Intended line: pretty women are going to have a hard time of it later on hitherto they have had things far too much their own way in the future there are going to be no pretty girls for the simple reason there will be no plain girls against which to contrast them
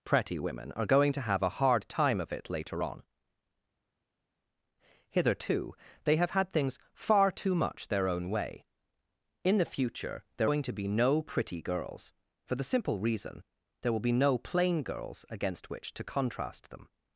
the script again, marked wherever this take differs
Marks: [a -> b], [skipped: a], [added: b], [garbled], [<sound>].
pretty women are going to have a hard time of it later on hitherto they have had things far too much their own way in the future there [skipped: are] going to be no pretty girls for the simple reason there will be no plain girls against which to contrast them